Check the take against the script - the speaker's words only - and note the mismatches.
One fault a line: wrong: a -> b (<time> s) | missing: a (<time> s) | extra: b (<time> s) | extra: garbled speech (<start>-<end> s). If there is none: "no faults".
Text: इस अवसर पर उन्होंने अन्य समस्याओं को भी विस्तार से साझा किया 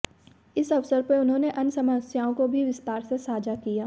no faults